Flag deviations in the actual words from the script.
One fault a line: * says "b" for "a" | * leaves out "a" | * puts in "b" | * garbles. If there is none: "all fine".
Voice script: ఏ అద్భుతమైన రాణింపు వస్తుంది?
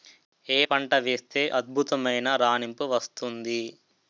* puts in "పంట వేస్తే"